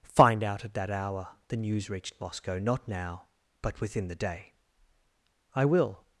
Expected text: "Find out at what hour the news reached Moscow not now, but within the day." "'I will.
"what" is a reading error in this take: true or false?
true